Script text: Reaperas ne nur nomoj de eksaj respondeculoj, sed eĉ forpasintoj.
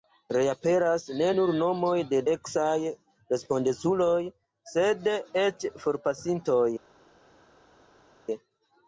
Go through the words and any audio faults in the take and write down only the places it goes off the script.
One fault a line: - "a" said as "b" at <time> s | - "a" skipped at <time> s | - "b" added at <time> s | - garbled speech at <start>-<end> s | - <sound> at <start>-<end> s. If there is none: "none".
none